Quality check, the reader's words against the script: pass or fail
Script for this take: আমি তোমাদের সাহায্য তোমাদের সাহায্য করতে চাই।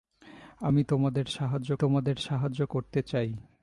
pass